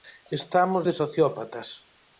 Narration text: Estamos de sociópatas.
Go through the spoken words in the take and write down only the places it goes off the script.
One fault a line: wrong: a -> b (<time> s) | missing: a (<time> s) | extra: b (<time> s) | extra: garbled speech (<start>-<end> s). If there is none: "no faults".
no faults